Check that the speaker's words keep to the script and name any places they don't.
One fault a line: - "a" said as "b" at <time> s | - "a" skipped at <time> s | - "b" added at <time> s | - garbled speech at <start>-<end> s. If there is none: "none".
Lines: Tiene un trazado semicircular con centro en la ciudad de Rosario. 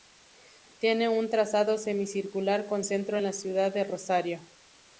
none